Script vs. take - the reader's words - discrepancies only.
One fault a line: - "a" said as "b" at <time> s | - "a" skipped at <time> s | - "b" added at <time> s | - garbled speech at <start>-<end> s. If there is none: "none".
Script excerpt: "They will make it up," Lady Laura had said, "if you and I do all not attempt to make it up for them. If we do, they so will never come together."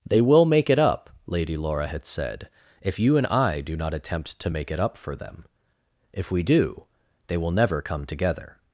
- "all" skipped at 3.8 s
- "so" skipped at 7.4 s